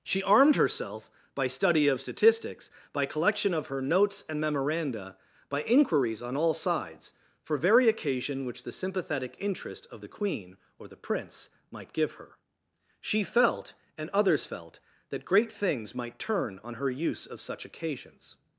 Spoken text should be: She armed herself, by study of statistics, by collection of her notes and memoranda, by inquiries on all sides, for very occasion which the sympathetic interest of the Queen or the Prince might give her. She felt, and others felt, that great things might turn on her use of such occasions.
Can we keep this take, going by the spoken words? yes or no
yes